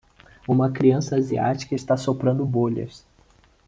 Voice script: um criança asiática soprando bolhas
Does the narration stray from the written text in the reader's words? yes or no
yes